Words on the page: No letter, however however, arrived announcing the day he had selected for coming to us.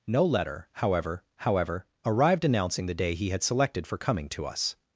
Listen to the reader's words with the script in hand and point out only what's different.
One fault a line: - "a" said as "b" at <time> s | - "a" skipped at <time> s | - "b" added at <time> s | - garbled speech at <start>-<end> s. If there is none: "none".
none